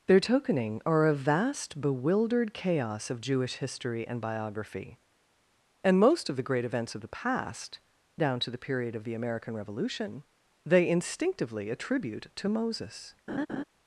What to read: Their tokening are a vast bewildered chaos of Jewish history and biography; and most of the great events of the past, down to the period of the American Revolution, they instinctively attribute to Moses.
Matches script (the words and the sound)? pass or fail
fail